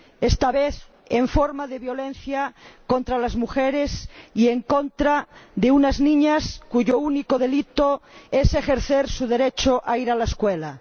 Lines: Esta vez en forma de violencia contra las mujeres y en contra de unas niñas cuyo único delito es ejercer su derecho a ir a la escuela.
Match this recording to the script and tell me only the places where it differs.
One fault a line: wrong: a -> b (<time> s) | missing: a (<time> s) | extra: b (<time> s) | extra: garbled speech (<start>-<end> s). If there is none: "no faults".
no faults